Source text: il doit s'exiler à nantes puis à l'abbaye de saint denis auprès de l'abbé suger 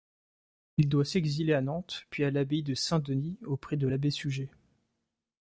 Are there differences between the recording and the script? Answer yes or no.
no